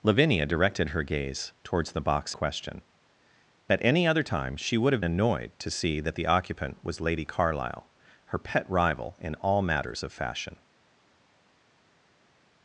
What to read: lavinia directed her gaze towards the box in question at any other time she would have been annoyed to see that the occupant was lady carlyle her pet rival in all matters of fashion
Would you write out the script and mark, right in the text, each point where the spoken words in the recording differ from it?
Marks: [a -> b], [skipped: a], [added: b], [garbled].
lavinia directed her gaze towards the box [skipped: in] question at any other time she would have [skipped: been] annoyed to see that the occupant was lady carlyle her pet rival in all matters of fashion